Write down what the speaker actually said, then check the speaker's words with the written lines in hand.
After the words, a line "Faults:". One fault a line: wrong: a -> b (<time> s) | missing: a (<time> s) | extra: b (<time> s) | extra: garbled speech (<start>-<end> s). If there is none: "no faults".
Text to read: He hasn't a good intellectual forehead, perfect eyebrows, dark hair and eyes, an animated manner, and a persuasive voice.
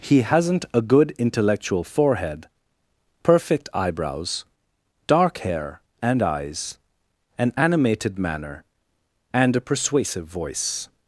He hasn't a good intellectual forehead, perfect eyebrows, dark hair and eyes, an animated manner, and a persuasive voice.
Faults:
no faults